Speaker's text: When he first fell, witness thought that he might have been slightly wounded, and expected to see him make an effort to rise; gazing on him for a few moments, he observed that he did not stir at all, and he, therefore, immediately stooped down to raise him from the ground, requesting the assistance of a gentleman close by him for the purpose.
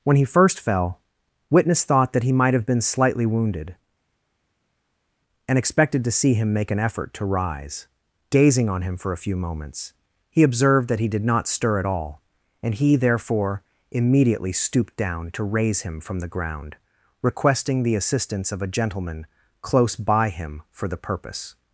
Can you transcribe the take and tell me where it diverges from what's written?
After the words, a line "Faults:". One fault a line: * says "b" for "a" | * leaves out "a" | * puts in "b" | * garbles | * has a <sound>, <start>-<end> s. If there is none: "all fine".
When he first fell, witness thought that he might have been slightly wounded, and expected to see him make an effort to rise; gazing on him for a few moments, he observed that he did not stir at all, and he, therefore, immediately stooped down to raise him from the ground, requesting the assistance of a gentleman close by him for the purpose.
Faults:
all fine